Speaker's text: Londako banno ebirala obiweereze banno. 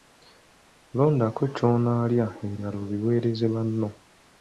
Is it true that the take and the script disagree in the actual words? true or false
true